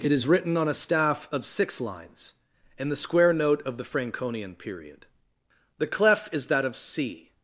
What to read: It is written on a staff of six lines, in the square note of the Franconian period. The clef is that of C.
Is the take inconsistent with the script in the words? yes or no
no